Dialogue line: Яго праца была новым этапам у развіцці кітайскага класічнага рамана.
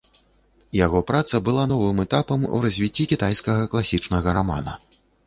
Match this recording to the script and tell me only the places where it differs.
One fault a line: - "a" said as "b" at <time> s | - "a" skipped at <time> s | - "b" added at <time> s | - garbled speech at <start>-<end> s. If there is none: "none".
none